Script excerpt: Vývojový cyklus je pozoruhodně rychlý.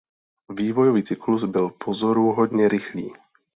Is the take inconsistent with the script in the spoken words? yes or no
yes